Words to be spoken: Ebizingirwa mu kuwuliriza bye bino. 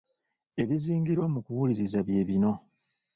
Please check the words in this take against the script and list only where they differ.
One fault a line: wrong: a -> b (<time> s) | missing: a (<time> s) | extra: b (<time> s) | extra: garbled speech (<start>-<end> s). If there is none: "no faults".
no faults